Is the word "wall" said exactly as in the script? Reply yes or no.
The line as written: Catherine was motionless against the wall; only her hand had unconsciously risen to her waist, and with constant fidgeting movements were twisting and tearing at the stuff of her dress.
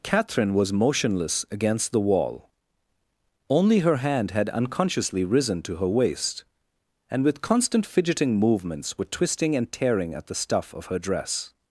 yes